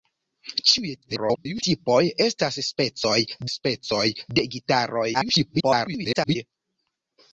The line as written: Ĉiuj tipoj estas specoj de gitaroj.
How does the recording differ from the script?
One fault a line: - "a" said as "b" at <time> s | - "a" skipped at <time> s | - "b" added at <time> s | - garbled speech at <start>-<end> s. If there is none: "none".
- garbled speech at 1.0-1.6 s
- "specoj" added at 3.5 s
- garbled speech at 5.1-6.4 s